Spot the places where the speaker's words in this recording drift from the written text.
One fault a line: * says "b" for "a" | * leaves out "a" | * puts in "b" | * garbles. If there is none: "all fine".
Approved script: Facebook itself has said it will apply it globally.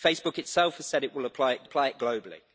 * puts in "apply it"